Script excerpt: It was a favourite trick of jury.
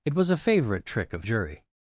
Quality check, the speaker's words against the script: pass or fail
pass